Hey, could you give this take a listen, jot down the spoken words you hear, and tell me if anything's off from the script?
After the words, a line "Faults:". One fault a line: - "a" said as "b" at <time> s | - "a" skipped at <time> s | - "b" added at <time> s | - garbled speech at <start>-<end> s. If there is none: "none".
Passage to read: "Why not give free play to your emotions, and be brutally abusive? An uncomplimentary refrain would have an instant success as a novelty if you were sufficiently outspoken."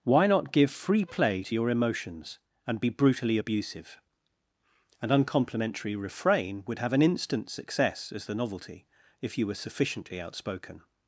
"Why not give free play to your emotions, and be brutally abusive? An uncomplimentary refrain would have an instant success as the novelty if you were sufficiently outspoken."
Faults:
- "a" said as "the" at 8.3 s